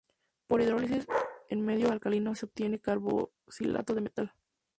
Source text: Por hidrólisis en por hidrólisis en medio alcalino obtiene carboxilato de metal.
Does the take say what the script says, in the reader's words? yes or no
no